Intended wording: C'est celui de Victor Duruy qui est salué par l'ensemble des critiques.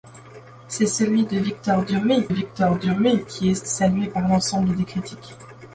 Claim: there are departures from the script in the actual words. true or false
true